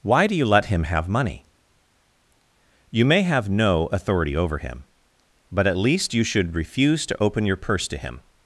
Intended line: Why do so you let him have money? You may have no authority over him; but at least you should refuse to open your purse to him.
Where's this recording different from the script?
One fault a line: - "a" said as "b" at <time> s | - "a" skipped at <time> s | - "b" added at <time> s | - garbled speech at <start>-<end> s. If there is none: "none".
- "so" skipped at 0.3 s